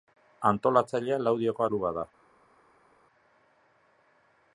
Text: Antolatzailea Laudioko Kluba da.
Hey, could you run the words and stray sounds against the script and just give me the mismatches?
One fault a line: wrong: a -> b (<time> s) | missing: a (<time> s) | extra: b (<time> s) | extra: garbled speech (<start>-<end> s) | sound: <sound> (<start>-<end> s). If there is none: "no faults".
no faults